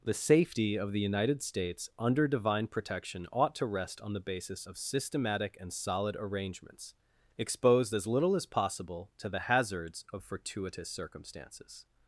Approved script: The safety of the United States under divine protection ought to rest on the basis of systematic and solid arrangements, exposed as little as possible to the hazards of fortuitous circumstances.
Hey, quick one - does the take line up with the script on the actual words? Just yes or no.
yes